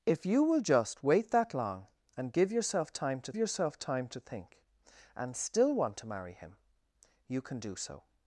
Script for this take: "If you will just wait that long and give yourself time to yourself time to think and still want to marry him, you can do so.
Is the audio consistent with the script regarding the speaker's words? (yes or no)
yes